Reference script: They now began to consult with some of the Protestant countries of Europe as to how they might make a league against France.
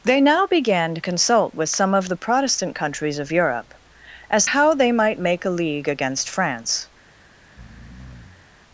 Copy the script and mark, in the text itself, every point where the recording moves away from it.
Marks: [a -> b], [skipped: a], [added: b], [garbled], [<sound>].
They now began to consult with some of the Protestant countries of Europe as [skipped: to] how they might make a league against France. [breath]